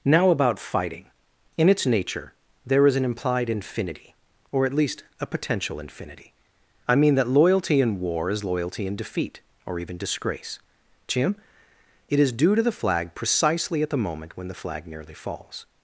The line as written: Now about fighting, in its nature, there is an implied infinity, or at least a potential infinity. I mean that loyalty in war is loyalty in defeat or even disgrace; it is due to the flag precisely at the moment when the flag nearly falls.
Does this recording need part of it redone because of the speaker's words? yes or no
yes